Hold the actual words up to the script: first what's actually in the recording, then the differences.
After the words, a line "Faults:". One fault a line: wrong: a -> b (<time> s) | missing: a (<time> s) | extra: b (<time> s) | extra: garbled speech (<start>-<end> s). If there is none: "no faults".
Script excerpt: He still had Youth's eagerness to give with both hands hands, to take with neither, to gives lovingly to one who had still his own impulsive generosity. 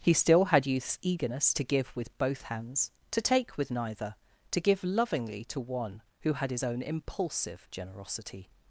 He still had Youth's eagerness to give with both hands, to take with neither, to give lovingly to one who had his own impulsive generosity.
Faults:
missing: hands (2.9 s)
wrong: gives -> give (4.6 s)
missing: still (6.5 s)